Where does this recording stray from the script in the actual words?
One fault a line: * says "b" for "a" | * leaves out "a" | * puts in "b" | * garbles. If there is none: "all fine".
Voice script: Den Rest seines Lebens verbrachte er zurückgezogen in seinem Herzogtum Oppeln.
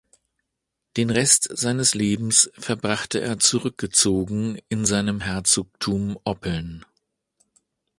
all fine